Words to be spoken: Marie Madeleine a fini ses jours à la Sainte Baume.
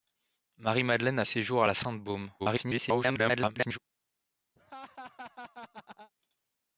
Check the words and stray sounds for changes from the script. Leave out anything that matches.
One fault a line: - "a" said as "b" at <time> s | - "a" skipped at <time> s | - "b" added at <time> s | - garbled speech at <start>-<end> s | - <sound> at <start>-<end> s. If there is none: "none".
- "fini" skipped at 1.2 s
- garbled speech at 2.4-3.8 s
- laugh at 4.6-6.1 s